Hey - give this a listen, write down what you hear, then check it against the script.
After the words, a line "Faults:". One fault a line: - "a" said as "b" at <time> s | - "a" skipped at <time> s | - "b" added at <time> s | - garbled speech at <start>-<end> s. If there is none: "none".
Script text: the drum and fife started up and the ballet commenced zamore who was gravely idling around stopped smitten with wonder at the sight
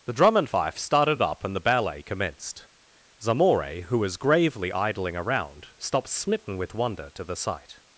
the drum and fife started up and the ballet commenced zamore who was gravely idling around stopped smitten with wonder to the sight
Faults:
- "at" said as "to" at 7.1 s